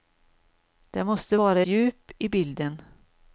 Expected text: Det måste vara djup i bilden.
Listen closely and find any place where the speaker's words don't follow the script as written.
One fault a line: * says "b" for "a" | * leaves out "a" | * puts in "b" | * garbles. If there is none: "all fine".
all fine